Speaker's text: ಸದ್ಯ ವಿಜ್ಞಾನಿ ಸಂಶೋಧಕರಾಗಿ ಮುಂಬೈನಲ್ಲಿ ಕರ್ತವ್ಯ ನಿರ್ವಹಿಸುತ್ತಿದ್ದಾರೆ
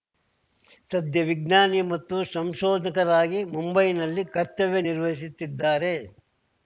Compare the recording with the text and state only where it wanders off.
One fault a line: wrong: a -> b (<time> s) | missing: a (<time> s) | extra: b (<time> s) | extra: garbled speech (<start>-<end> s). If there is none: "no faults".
extra: ಮತ್ತು (1.9 s)